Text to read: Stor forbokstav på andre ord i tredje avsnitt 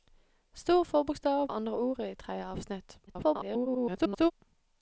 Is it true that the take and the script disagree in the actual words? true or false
true